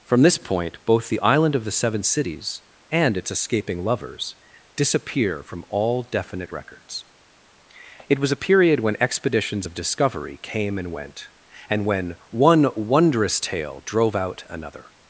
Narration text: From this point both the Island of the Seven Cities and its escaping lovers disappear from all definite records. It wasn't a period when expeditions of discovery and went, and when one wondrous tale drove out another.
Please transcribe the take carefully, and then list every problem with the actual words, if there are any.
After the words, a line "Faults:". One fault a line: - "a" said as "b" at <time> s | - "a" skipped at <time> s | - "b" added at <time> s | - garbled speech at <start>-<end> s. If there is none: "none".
From this point both the Island of the Seven Cities and its escaping lovers disappear from all definite records. It was a period when expeditions of discovery came and went, and when one wondrous tale drove out another.
Faults:
- "wasn't" said as "was" at 8.2 s
- "came" added at 10.4 s